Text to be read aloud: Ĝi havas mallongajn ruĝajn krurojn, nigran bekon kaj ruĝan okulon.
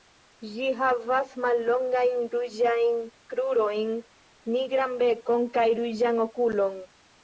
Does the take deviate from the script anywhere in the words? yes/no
no